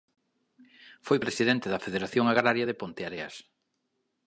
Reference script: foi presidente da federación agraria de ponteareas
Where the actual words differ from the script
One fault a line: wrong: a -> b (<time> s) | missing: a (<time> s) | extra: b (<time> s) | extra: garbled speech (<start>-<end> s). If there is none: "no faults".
no faults